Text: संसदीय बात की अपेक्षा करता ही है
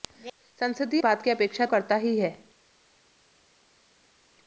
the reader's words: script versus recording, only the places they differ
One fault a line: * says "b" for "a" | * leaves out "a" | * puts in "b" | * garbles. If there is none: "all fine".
all fine